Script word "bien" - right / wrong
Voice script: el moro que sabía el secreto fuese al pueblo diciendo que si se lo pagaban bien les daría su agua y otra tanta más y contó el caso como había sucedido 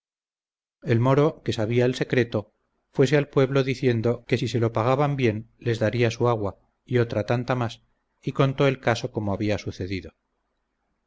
right